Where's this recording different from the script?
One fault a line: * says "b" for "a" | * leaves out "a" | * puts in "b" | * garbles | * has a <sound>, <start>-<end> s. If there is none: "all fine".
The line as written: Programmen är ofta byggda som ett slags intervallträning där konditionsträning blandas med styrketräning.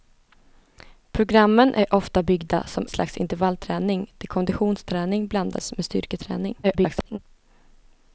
* leaves out "ett"
* garbles